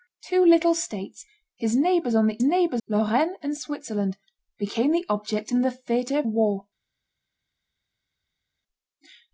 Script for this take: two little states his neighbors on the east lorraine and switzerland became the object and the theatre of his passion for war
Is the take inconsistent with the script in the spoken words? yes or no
yes